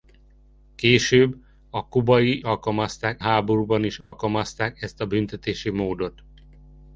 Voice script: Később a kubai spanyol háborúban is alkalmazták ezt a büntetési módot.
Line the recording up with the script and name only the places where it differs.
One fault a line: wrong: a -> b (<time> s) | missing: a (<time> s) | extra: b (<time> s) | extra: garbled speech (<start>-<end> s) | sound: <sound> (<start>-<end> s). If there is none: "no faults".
wrong: spanyol -> alkalmazták (2.4 s)
sound: dropout (4.0-4.1 s)